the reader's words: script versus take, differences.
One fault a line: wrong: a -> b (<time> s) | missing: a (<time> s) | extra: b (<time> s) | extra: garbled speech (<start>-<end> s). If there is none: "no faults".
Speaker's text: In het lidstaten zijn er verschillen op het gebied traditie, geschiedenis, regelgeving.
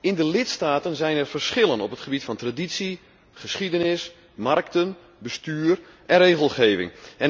wrong: het -> de (0.1 s)
extra: van (2.2 s)
extra: markten bestuur en (4.3 s)